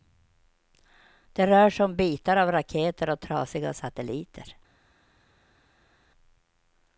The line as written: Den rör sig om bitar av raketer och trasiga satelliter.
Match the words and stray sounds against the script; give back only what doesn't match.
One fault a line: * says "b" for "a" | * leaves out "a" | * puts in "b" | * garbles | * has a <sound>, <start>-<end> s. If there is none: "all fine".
* says "Det" for "Den"